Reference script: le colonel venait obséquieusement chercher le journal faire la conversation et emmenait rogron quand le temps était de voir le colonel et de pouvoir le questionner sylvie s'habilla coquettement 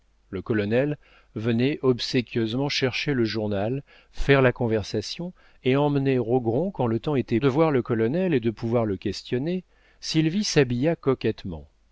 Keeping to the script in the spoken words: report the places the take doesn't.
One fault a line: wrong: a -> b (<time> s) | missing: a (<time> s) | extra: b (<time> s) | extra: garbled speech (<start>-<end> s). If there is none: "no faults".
no faults